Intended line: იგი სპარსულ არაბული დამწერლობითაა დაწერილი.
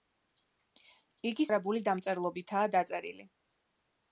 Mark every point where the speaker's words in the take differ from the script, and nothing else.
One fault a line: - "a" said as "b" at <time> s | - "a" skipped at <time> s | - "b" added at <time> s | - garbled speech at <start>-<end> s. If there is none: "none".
- "სპარსულ" skipped at 1.4 s